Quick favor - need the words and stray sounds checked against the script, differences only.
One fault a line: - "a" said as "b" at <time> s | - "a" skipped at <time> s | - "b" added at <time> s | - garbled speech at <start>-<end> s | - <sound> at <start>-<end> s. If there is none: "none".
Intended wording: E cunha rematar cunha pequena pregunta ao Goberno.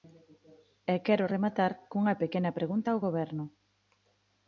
- "cunha" said as "quero" at 1.1 s